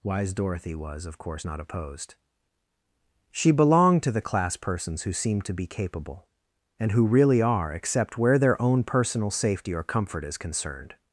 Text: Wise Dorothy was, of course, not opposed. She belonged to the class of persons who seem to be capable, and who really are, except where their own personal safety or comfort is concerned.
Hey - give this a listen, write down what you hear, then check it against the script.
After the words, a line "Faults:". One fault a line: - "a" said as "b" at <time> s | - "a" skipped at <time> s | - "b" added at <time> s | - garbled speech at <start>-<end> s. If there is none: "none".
Wise Dorothy was, of course, not opposed. She belonged to the class persons who seem to be capable, and who really are, except where their own personal safety or comfort is concerned.
Faults:
- "of" skipped at 4.6 s